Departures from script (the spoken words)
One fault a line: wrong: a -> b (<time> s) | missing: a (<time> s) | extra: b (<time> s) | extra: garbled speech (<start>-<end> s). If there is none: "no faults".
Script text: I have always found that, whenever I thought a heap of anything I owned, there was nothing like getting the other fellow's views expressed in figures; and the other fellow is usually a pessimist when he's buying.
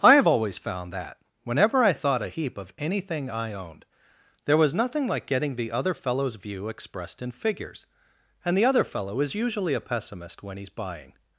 wrong: views -> view (6.4 s)